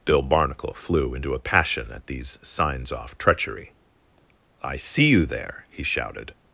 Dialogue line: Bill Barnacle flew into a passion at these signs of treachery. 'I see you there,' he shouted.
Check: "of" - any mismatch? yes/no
yes